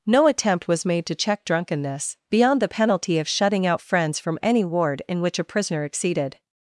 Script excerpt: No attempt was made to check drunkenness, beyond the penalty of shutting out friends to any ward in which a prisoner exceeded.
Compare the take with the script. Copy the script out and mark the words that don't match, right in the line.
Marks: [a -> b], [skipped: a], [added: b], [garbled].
No attempt was made to check drunkenness, beyond the penalty of shutting out friends [to -> from] any ward in which a prisoner exceeded.